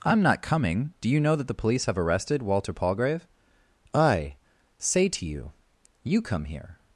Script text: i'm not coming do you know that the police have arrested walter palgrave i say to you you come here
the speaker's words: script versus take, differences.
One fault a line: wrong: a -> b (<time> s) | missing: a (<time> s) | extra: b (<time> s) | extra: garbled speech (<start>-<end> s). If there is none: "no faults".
no faults